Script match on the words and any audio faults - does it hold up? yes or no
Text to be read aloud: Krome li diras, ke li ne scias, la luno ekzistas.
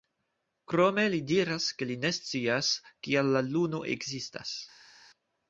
no